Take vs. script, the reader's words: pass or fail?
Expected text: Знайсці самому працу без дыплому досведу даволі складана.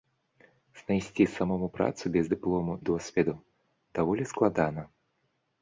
pass